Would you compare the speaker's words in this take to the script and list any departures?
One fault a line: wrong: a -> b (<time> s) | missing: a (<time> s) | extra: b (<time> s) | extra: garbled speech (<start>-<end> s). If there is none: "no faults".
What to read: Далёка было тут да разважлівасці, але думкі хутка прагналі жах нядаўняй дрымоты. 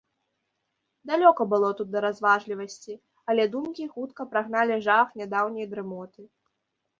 no faults